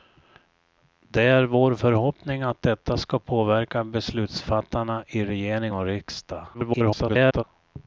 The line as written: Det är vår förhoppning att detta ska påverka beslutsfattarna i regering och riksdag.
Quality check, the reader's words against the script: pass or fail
fail